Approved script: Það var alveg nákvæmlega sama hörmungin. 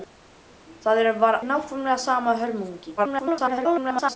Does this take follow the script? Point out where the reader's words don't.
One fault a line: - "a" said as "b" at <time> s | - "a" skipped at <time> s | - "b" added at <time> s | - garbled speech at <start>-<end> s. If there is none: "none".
- "alveg" skipped at 1.4 s
- garbled speech at 3.0-4.2 s